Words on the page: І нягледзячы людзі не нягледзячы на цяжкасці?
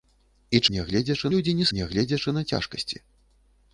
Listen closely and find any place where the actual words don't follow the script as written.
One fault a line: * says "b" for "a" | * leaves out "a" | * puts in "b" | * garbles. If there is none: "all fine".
all fine